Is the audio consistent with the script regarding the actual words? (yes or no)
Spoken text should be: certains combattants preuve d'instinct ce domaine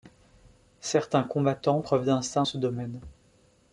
yes